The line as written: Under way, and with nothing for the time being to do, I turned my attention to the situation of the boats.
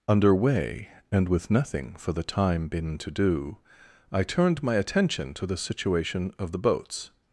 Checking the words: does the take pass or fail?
fail